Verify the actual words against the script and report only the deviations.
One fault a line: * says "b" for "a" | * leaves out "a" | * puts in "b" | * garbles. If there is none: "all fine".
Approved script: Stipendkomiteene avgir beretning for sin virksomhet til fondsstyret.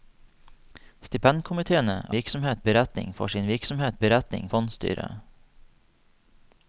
* says "virksomhet" for "avgir"
* says "beretning" for "til"